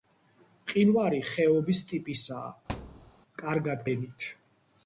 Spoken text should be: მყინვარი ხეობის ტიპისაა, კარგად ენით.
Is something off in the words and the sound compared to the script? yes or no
yes